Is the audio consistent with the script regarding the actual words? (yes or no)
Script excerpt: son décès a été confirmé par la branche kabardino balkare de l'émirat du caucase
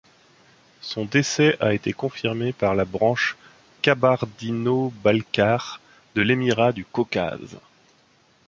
yes